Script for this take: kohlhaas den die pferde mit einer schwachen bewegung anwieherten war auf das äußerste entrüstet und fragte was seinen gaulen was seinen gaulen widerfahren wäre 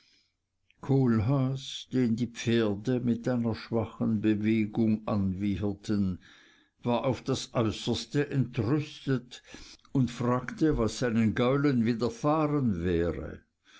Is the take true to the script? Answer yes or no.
no